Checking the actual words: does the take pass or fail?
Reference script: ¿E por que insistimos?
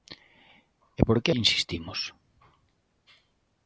pass